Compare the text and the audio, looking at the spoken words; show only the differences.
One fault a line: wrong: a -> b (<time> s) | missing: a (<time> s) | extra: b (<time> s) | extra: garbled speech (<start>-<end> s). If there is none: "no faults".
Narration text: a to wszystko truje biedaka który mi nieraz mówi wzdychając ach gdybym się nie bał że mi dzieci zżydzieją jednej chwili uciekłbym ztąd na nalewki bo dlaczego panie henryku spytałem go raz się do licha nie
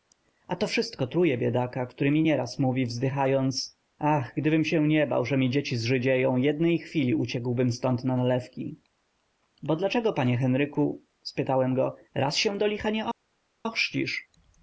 no faults